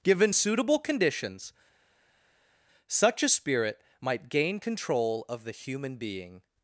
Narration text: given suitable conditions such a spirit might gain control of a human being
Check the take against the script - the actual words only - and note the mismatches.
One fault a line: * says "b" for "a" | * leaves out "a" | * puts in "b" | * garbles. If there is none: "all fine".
* says "the" for "a"